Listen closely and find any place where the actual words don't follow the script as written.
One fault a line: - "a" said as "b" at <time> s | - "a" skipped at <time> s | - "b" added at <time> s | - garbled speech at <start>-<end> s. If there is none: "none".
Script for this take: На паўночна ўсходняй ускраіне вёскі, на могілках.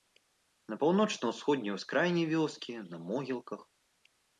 none